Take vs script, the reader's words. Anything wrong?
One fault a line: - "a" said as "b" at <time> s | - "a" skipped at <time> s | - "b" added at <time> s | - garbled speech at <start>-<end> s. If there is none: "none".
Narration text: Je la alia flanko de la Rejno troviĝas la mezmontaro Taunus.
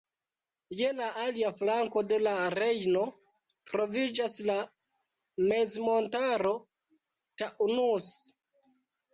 none